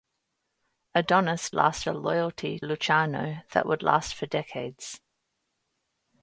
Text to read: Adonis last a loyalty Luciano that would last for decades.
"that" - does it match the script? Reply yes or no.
yes